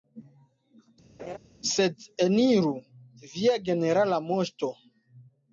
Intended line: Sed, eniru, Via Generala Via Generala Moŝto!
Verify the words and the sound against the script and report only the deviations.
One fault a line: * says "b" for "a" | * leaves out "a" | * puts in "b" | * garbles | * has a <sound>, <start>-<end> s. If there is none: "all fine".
* has a laugh, 1.2-1.4 s
* leaves out "Via Generala"